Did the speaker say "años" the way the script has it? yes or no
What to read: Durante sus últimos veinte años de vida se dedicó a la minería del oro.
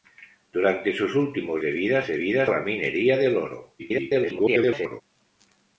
no